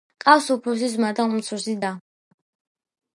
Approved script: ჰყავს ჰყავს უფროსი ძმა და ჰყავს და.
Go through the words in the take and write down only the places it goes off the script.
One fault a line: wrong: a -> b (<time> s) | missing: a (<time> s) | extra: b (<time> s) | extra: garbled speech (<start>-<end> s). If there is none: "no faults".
missing: ჰყავს (0.5 s)
wrong: ჰყავს -> უმცროსი (1.3 s)